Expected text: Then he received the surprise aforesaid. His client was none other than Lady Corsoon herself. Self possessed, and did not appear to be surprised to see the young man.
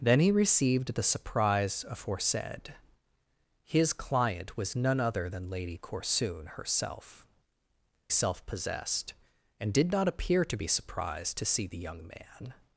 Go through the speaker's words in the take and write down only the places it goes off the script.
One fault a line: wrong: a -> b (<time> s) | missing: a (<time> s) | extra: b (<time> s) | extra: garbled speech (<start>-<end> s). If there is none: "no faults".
no faults